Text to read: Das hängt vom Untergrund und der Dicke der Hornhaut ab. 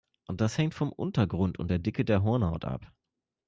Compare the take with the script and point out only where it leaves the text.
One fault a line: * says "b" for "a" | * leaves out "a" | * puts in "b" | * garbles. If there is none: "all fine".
all fine